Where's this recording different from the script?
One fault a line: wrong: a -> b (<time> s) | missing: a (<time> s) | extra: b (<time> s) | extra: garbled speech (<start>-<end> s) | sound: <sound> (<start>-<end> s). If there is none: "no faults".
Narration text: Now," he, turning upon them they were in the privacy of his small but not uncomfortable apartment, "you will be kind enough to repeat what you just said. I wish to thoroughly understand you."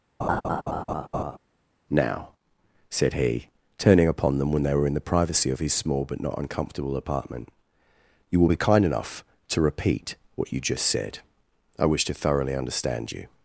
sound: laugh (0.2-1.4 s)
extra: said (2.9 s)
extra: when (4.5 s)